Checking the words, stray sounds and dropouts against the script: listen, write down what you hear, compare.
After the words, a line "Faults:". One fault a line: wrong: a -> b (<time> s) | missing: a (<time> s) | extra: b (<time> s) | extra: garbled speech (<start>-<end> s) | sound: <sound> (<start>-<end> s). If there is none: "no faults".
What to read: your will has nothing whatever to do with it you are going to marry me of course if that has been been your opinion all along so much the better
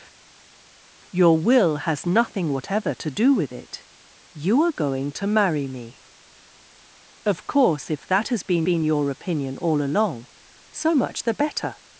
your will has nothing whatever to do with it you are going to marry me of course if that has been been your opinion all along so much the better
Faults:
no faults